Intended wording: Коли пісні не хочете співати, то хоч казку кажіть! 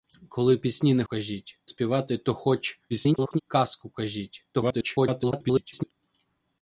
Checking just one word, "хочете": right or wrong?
wrong